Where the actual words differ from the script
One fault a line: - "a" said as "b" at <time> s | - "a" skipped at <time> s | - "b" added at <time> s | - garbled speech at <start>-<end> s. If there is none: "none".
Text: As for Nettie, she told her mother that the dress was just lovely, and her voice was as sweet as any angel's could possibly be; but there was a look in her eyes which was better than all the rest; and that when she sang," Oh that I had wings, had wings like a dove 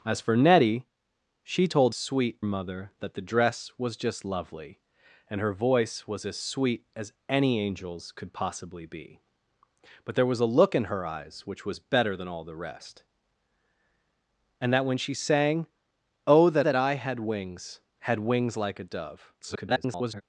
- "her" said as "sweet" at 1.9 s
- "that" added at 16.6 s
- garbled speech at 19.4-20.2 s